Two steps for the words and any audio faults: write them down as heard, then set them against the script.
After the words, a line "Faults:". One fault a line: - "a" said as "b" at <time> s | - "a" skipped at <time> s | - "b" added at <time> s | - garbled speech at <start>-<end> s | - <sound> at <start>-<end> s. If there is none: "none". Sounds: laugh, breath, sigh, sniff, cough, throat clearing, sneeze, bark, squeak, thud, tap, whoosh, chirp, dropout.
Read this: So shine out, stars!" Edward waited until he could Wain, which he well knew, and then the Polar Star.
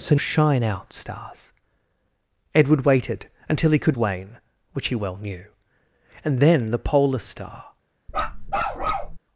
So shine out, stars!" Edward waited until he could Wain, which he well knew, and then the Polar Star.
Faults:
- bark at 8.1-9.2 s